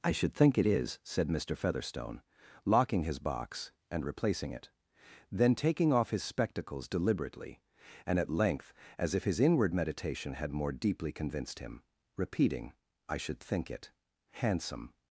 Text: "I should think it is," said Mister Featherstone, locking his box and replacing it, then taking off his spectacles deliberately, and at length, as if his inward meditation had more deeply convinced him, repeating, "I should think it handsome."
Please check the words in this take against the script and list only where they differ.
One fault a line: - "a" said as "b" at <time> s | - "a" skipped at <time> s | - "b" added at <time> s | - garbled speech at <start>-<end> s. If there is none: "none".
none